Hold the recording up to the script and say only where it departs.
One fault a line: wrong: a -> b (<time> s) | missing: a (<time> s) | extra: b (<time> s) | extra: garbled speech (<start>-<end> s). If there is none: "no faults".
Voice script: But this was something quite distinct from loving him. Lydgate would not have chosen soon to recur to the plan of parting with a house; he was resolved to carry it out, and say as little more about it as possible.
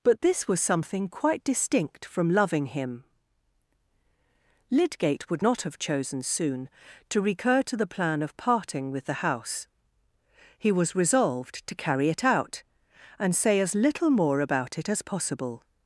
wrong: a -> the (9.0 s)